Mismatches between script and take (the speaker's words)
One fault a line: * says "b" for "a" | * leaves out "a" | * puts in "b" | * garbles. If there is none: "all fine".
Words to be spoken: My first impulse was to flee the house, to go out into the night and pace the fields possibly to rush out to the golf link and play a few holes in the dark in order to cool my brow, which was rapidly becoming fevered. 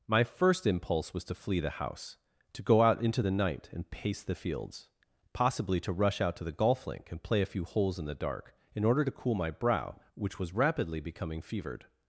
all fine